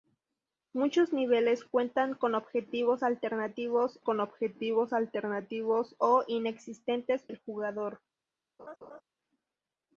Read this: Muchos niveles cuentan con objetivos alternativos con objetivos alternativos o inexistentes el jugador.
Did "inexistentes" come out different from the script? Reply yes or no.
no